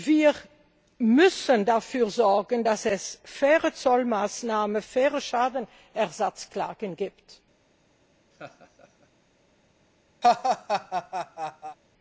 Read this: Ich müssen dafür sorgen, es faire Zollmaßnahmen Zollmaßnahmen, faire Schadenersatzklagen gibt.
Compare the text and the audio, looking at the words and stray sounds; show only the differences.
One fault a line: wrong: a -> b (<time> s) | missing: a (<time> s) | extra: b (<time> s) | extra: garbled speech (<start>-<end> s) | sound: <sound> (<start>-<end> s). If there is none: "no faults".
wrong: Ich -> Wir (0.1 s)
extra: dass (2.6 s)
missing: Zollmaßnahmen (4.8 s)
sound: laugh (8.3-9.1 s)
sound: laugh (10.2-11.8 s)